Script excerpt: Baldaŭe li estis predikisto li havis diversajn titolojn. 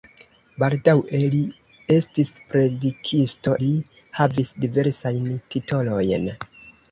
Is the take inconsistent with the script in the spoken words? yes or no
no